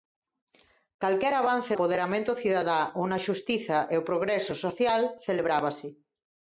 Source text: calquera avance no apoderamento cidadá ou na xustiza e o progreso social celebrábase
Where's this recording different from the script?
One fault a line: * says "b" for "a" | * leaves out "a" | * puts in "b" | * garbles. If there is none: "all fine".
* leaves out "no"